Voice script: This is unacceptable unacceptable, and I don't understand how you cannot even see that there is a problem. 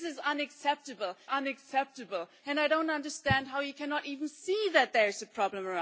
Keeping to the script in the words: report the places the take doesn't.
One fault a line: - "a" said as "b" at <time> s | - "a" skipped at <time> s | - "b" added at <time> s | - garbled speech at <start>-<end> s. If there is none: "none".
none